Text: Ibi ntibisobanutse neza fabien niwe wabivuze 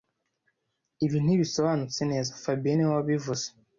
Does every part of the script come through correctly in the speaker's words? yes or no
yes